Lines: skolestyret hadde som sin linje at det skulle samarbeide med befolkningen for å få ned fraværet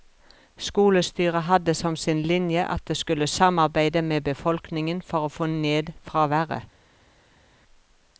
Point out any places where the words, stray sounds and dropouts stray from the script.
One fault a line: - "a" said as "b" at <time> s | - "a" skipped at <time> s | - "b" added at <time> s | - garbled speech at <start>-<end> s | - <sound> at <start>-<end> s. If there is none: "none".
none